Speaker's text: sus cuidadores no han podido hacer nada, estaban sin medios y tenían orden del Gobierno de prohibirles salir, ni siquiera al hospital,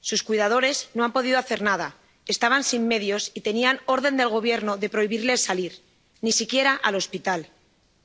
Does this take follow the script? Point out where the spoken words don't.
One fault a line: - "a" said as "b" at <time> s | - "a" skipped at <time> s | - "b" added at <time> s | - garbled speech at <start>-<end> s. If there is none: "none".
none